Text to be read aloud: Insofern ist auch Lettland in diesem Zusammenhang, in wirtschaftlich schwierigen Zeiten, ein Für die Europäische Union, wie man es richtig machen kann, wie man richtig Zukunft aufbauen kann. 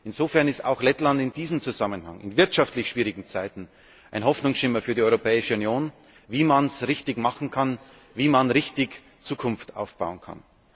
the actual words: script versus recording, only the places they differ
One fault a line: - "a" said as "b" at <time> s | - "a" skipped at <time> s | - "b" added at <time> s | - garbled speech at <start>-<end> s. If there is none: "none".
- "Hoffnungsschimmer" added at 4.2 s